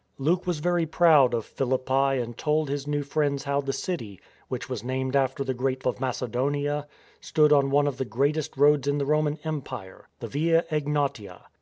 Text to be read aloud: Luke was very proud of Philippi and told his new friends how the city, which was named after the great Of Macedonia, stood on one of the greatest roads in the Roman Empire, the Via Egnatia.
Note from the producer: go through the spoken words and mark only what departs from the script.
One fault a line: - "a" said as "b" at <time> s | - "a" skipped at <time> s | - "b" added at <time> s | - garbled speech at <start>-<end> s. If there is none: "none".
none